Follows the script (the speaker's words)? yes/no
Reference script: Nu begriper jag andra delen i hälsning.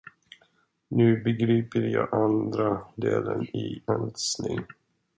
yes